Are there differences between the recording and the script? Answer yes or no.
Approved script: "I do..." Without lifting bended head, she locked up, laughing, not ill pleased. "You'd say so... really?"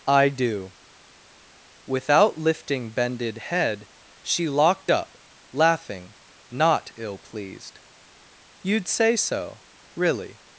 no